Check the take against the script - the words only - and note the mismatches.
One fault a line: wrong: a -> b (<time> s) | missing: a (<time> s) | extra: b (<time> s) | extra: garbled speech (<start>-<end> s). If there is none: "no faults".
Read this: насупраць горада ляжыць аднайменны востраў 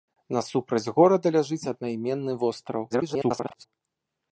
extra: garbled speech (2.9-3.7 s)